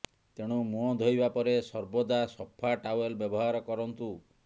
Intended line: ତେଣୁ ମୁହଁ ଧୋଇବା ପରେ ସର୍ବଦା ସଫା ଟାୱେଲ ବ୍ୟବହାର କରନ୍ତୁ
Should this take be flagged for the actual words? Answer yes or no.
no